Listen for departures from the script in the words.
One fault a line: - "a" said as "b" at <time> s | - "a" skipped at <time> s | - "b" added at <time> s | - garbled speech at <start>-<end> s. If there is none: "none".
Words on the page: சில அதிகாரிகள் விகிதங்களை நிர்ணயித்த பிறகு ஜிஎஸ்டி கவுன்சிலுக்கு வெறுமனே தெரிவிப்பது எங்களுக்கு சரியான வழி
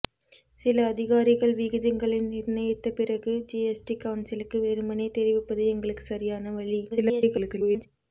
- garbled speech at 6.9-7.9 s